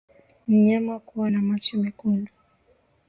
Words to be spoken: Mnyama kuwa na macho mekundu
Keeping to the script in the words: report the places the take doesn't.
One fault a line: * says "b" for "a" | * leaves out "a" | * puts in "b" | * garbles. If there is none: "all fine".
all fine